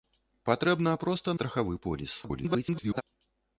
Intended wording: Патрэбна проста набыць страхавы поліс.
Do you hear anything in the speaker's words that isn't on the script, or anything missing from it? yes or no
yes